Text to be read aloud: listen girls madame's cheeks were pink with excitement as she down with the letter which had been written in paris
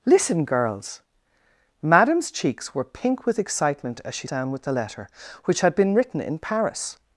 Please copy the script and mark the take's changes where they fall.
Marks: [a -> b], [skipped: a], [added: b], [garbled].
listen girls madame's cheeks were pink with excitement as she down with the letter which had been written in paris